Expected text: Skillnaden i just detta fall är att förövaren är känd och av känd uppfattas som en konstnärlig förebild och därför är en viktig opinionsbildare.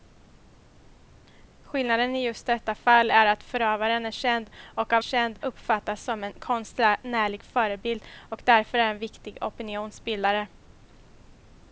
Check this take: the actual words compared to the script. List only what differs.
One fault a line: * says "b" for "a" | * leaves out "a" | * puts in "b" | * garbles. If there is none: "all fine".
all fine